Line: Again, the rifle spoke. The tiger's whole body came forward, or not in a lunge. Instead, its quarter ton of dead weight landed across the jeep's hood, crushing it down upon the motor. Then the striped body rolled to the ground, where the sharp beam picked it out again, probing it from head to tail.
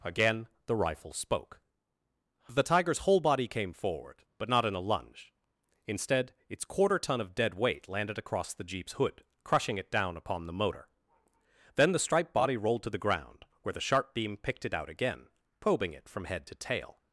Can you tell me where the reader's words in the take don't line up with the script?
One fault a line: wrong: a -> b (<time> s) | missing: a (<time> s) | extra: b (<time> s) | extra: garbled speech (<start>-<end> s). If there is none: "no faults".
wrong: or -> but (4.4 s)